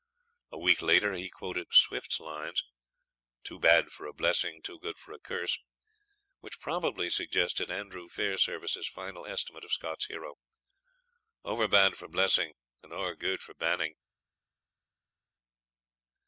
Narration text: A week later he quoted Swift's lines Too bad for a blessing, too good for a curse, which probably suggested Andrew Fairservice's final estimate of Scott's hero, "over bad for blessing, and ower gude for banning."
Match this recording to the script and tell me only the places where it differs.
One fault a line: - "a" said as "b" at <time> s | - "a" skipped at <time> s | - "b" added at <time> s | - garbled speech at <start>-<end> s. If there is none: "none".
none